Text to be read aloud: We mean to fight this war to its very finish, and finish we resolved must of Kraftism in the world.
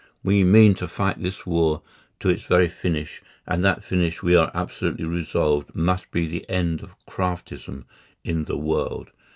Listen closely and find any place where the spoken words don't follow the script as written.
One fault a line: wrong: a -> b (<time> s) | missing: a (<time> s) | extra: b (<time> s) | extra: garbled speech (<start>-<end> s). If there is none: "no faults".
extra: that (3.6 s)
extra: are absolutely (4.3 s)
extra: be the end (6.1 s)